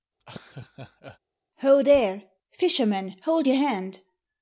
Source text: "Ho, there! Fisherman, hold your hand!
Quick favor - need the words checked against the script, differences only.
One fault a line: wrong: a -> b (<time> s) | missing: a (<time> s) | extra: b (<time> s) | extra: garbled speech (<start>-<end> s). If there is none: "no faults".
no faults